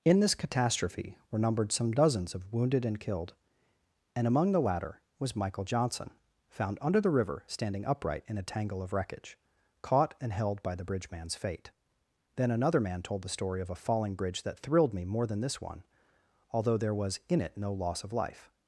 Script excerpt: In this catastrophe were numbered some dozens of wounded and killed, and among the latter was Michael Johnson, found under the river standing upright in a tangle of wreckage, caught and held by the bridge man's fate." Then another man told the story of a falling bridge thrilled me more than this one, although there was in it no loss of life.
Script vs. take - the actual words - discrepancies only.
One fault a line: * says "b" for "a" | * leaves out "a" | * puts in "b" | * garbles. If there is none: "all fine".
* puts in "that"